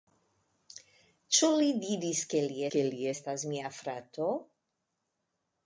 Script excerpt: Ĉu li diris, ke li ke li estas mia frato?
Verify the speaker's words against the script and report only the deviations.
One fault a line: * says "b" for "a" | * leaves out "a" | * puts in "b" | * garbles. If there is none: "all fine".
all fine